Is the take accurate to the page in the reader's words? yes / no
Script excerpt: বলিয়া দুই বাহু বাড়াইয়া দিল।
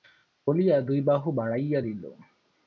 yes